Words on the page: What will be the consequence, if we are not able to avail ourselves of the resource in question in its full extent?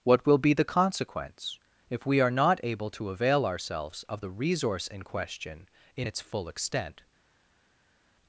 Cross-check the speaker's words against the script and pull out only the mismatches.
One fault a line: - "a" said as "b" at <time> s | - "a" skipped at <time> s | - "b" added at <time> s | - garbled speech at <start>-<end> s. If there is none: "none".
none